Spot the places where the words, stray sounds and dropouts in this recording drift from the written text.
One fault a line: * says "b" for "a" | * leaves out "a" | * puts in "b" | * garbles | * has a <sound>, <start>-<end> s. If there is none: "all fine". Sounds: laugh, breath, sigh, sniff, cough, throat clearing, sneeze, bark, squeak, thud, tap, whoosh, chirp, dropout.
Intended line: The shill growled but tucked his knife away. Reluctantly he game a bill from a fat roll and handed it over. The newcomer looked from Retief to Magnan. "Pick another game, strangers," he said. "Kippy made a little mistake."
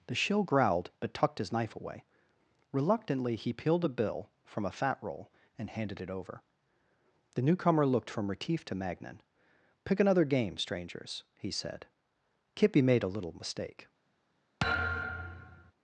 * says "peeled" for "game"
* has a thud, 14.6-15.7 s